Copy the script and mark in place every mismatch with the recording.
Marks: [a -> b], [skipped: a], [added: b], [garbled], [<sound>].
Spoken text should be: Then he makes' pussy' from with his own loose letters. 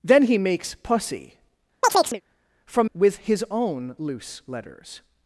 Then he makes' pussy' [chirp] from with his own loose letters.